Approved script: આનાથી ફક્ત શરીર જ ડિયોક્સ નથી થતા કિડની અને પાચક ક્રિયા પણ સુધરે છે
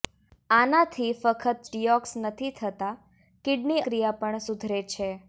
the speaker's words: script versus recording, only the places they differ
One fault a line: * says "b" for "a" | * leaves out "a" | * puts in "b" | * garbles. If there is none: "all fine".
* leaves out "શરીર જ"
* leaves out "અને પાચક"